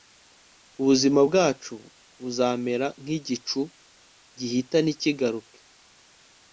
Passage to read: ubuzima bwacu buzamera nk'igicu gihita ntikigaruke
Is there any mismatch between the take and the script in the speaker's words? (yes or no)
no